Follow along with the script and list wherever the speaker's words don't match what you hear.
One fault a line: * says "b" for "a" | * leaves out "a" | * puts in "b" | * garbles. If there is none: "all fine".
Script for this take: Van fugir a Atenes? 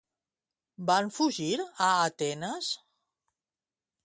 all fine